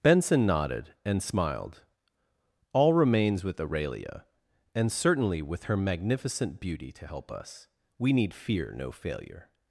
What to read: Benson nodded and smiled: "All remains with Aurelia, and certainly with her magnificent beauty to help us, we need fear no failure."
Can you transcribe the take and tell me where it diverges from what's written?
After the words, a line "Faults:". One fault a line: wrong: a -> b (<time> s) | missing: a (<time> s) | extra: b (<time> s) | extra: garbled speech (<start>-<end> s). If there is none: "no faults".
Benson nodded and smiled: "All remains with Aurelia, and certainly with her magnificent beauty to help us, we need fear no failure."
Faults:
no faults